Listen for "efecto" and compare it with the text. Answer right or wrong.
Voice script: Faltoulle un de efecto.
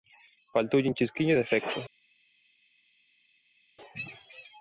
right